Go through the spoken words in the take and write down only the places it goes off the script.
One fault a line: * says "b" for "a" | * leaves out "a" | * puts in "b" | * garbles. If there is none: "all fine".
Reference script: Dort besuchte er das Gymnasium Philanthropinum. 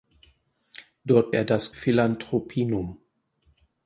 * leaves out "besuchte"
* leaves out "Gymnasium"